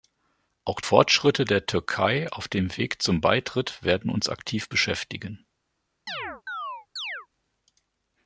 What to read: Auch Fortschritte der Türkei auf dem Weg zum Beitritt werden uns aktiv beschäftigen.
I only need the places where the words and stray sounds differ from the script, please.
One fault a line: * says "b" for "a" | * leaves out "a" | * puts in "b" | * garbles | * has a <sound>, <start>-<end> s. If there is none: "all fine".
* has a chirp, 6.1-7.3 s